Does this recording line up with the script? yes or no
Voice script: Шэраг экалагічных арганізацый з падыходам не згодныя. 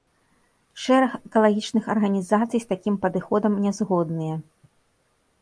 no